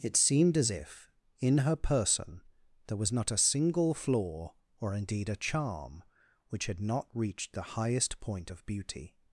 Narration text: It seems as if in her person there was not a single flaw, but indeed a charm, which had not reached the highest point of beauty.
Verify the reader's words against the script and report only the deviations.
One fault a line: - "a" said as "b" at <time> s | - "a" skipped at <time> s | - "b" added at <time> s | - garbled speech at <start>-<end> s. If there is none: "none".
- "seems" said as "seemed" at 0.2 s
- "but" said as "or" at 4.8 s